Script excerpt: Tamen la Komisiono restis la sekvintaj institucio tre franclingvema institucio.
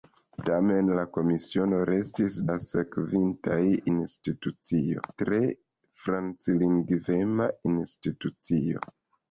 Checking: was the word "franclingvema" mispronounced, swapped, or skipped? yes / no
no